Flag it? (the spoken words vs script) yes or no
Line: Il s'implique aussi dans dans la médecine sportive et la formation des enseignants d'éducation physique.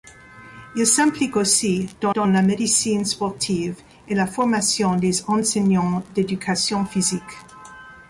no